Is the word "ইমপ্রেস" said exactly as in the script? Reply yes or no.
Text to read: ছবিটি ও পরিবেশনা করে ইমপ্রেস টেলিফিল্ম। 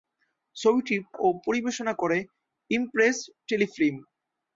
yes